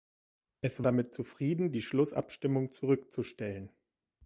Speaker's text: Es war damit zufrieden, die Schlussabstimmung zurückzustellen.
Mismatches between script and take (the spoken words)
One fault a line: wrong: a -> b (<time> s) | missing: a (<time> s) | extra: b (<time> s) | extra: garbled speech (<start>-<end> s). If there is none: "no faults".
missing: war (0.8 s)